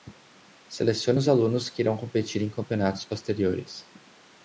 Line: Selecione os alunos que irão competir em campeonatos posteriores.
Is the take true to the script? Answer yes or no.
yes